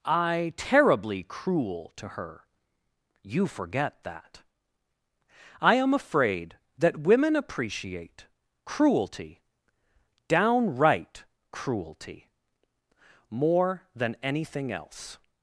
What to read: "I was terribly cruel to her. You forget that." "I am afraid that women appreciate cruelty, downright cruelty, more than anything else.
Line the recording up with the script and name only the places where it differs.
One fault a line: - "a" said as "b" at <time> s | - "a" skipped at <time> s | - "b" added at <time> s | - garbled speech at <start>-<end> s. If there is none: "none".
- "was" skipped at 0.5 s